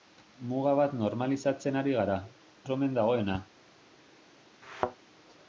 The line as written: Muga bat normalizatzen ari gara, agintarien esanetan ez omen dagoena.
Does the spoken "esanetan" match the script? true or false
false